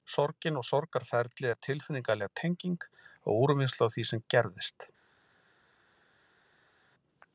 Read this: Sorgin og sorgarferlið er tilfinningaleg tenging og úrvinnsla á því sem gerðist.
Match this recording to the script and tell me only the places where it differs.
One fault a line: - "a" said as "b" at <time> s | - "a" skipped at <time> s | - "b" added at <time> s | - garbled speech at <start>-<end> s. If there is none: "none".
none